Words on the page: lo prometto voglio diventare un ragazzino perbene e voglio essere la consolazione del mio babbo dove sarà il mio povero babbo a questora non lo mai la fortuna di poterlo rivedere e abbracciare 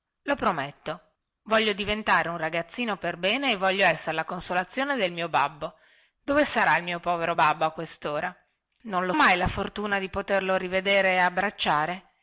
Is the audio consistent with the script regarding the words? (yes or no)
yes